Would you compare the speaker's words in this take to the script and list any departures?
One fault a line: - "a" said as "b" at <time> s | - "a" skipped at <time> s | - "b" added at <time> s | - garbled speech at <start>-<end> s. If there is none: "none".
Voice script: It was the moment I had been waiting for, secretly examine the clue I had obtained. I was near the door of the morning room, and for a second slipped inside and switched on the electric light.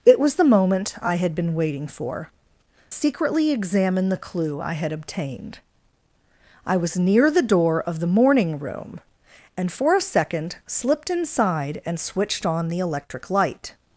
none